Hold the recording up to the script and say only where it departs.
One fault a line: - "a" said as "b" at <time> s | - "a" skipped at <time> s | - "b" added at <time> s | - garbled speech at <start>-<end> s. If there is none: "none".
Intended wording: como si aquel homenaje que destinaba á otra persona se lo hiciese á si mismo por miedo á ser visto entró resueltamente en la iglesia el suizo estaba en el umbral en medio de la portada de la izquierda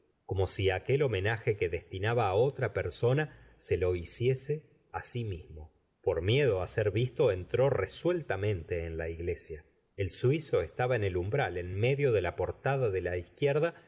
none